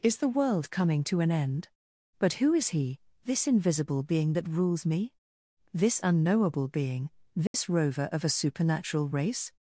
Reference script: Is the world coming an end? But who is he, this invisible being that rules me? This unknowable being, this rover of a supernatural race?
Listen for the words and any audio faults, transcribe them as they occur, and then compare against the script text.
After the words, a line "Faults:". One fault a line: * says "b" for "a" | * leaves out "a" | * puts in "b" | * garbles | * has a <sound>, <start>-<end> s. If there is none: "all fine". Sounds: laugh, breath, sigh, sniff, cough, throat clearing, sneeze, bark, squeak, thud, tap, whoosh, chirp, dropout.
Is the world coming to an end? But who is he, this invisible being that rules me? This unknowable being, this rover of a supernatural race?
Faults:
* puts in "to"
* has a dropout, 7.5-7.5 s